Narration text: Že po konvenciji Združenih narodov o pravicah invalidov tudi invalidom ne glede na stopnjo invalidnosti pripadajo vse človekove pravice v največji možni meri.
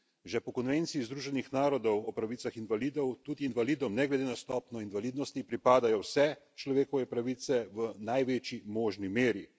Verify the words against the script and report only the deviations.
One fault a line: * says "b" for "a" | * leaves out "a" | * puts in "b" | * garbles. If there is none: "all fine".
all fine